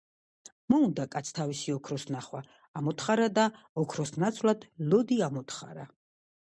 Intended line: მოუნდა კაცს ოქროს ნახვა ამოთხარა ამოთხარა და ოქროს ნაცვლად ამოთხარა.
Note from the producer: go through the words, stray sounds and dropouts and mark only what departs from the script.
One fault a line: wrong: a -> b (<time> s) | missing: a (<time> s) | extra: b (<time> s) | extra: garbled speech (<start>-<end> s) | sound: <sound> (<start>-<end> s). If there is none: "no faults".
extra: თავისი (1.4 s)
missing: ამოთხარა (3.3 s)
extra: ლოდი (4.9 s)